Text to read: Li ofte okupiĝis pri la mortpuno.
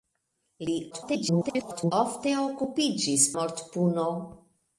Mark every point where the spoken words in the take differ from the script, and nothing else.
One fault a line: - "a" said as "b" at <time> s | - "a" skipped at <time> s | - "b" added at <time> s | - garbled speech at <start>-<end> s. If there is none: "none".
- garbled speech at 0.9-1.9 s
- "pri la" skipped at 3.3 s